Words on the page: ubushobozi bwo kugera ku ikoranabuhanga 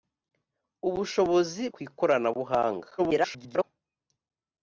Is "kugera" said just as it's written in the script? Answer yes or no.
no